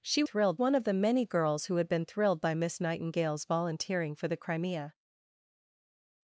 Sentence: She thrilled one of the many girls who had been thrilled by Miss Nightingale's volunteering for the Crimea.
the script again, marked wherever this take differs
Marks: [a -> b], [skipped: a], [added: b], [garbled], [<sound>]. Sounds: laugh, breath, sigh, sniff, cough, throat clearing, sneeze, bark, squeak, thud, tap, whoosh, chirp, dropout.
She thrilled one of the many girls who had been thrilled by Miss Nightingale's volunteering for the Crimea.